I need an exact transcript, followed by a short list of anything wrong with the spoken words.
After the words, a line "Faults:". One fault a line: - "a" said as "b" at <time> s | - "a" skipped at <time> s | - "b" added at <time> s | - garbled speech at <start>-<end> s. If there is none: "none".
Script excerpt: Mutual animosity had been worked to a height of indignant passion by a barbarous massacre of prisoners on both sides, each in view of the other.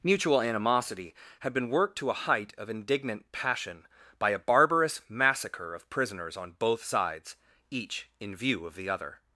Mutual animosity had been worked to a height of indignant passion by a barbarous massacre of prisoners on both sides, each in view of the other.
Faults:
none